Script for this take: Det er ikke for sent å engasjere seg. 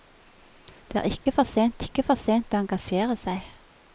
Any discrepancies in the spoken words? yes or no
yes